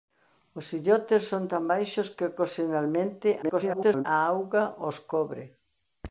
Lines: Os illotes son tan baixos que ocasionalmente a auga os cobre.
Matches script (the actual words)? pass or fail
fail